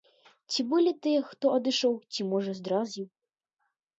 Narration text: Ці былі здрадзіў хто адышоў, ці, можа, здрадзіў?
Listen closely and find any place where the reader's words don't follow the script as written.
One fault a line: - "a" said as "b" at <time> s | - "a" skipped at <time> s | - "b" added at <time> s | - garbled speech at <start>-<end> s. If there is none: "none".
- "здрадзіў" said as "тыя" at 1.1 s